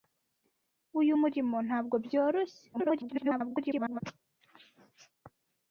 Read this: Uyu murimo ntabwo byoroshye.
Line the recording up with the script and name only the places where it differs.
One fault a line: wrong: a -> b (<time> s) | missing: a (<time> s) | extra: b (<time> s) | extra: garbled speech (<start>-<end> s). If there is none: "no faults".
extra: garbled speech (2.7-4.0 s)